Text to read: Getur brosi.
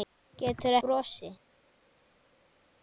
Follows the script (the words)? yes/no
yes